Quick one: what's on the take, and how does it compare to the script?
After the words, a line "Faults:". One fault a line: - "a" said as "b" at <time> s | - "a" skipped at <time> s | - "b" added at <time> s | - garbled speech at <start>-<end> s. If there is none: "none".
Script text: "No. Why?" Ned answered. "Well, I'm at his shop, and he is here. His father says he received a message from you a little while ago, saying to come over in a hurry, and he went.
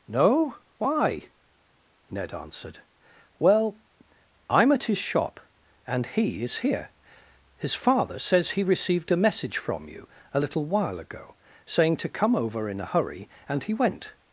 "No. Why?" Ned answered. "Well, I'm at his shop, and he is here. His father says he received a message from you a little while ago, saying to come over in a hurry, and he went.
Faults:
none